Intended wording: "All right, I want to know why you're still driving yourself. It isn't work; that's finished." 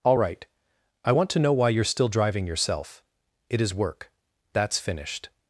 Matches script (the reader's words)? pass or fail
fail